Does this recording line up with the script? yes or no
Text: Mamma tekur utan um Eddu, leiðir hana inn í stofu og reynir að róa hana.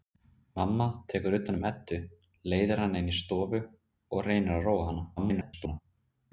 no